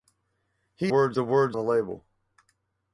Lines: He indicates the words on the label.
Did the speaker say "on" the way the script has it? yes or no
no